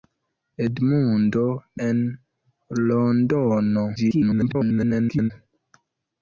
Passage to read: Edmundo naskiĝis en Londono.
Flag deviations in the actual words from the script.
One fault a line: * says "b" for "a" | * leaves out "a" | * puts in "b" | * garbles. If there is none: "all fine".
* leaves out "naskiĝis"
* garbles